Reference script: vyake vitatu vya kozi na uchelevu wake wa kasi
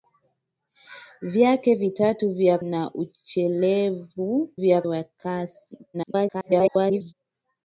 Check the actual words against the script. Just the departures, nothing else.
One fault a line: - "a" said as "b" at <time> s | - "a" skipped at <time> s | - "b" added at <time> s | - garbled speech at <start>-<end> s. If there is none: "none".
- "kozi" skipped at 2.6 s
- "wake" said as "vya" at 4.5 s
- garbled speech at 5.9-7.1 s